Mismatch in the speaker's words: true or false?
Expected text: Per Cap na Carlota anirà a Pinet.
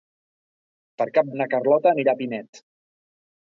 false